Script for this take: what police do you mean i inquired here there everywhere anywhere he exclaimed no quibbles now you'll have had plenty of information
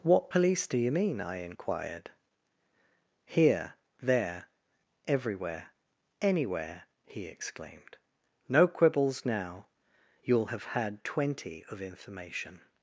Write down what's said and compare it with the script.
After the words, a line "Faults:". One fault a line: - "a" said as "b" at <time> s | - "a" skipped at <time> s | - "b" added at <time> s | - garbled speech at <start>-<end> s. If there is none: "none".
what police do you mean i inquired here there everywhere anywhere he exclaimed no quibbles now you'll have had twenty of information
Faults:
- "plenty" said as "twenty" at 11.0 s